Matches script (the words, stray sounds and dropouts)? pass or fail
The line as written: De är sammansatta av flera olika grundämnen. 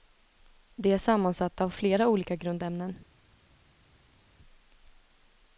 pass